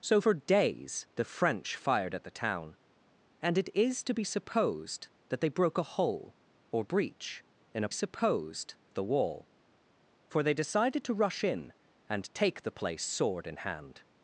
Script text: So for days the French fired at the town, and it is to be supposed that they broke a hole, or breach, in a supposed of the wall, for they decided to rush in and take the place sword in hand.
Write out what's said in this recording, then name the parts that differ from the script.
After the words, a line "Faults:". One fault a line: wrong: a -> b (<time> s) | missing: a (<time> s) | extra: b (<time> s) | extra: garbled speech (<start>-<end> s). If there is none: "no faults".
So for days the French fired at the town, and it is to be supposed that they broke a hole, or breach, in a supposed of the wall, for they decided to rush in and take the place sword in hand.
Faults:
no faults